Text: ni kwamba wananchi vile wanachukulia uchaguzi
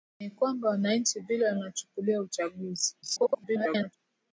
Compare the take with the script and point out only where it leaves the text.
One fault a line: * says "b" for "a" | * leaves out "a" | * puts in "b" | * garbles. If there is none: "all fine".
* garbles